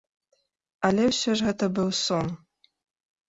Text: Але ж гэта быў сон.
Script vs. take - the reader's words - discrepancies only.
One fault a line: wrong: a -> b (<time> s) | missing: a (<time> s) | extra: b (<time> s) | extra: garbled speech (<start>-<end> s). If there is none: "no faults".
extra: ўсё (1.1 s)